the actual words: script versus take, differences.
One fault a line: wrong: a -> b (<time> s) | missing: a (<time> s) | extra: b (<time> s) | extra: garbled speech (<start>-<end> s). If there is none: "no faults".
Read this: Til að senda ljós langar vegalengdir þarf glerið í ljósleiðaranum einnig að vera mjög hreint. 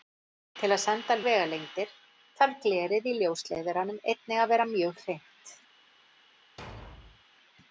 missing: ljós langar (1.2 s)